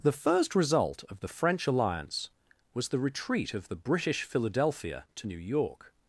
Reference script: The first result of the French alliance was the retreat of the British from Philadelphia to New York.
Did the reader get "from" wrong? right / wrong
wrong